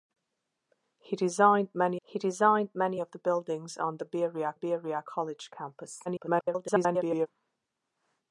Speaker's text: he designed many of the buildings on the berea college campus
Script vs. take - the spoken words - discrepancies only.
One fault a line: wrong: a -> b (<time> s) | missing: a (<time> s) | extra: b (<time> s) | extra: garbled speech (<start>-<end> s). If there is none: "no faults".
extra: he designed many (2.0 s)
extra: berea (4.5 s)
extra: garbled speech (6.1-7.3 s)